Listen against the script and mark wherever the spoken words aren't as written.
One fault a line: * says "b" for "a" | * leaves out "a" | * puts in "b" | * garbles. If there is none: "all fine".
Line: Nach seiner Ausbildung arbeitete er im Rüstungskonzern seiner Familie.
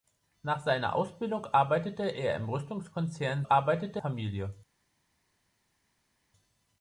* says "arbeitete" for "seiner"